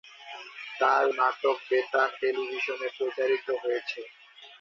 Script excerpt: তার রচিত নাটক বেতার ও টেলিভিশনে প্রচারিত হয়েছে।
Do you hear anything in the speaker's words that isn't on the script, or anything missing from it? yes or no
yes